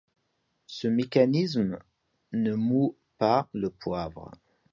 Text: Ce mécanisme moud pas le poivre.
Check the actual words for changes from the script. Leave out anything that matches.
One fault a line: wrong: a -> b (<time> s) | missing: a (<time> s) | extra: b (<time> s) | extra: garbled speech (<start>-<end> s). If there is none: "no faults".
extra: ne (2.3 s)